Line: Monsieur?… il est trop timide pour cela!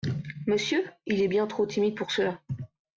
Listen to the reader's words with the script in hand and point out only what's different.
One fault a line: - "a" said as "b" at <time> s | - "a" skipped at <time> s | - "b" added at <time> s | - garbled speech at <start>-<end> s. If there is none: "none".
- "bien" added at 1.3 s